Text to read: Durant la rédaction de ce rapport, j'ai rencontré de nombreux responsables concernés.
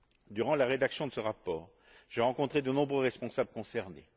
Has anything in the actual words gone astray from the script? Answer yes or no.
no